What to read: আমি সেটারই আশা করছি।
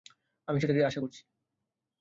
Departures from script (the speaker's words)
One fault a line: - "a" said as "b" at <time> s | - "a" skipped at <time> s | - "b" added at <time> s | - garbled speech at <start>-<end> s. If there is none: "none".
none